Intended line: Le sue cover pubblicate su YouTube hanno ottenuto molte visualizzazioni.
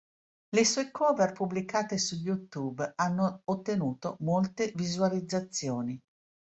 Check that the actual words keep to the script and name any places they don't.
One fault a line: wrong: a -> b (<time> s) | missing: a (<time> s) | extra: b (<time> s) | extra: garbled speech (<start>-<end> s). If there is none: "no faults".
no faults